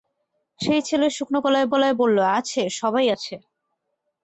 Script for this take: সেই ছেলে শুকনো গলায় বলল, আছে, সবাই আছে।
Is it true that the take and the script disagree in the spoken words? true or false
true